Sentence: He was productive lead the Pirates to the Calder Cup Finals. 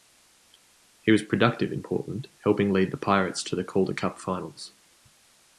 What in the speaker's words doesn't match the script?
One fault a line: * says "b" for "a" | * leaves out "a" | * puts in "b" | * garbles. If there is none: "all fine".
* puts in "in Portland helping"